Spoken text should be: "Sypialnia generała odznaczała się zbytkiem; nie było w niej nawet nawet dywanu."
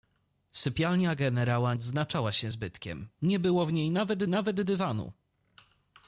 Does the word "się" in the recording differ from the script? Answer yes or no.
no